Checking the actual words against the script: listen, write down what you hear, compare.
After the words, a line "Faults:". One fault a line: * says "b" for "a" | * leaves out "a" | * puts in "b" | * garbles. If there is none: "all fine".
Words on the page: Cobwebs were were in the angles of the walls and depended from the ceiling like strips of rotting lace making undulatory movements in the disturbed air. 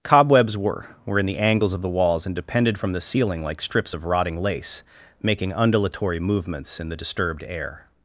Cobwebs were were in the angles of the walls and depended from the ceiling like strips of rotting lace making undulatory movements in the disturbed air.
Faults:
all fine